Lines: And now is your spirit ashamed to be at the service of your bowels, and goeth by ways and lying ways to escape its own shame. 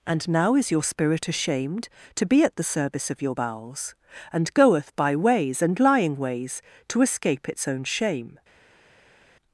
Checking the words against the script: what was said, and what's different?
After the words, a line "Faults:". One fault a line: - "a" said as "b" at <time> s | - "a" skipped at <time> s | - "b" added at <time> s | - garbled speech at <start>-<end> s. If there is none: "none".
And now is your spirit ashamed to be at the service of your bowels, and goeth by ways and lying ways to escape its own shame.
Faults:
none